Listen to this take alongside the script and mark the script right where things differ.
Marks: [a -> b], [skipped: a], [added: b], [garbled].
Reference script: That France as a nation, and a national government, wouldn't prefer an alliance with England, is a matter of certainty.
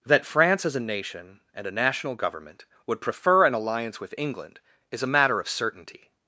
That France as a nation, and a national government, [wouldn't -> would] prefer an alliance with England, is a matter of certainty.